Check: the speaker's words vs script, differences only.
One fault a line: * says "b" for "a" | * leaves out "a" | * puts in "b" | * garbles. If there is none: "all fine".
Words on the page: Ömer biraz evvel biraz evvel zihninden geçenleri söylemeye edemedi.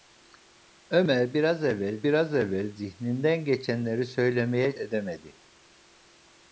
all fine